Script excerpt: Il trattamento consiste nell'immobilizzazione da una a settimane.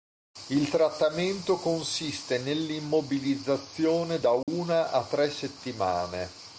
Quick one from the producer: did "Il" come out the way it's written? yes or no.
yes